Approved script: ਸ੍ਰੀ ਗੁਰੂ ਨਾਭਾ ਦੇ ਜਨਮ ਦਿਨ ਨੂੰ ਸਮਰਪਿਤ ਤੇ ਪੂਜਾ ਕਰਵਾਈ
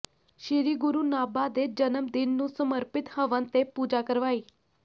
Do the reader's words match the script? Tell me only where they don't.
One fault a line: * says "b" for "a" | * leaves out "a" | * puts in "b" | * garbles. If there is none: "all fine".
* puts in "ਹਵਨ"